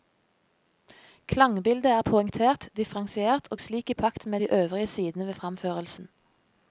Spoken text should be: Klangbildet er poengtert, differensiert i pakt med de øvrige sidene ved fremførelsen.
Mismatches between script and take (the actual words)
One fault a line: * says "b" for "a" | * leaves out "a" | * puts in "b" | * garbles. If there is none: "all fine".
* puts in "og slik"